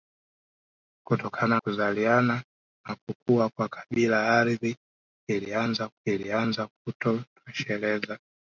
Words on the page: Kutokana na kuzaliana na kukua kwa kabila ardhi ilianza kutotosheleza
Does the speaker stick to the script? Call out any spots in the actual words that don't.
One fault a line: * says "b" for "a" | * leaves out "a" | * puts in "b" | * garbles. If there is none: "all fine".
* leaves out "na"
* puts in "ilianza"